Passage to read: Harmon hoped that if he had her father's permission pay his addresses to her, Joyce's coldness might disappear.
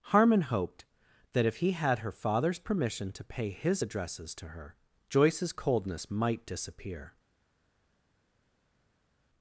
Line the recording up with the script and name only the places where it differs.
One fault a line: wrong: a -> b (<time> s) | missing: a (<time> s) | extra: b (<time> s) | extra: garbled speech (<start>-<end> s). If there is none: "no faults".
extra: to (3.1 s)